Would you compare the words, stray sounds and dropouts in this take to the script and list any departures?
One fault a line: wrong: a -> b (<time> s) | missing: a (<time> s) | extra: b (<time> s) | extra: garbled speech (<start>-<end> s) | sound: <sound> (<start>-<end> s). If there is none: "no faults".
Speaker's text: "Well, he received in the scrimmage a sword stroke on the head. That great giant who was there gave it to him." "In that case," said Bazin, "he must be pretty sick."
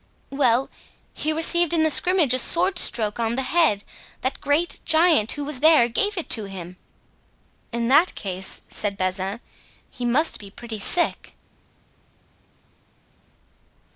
no faults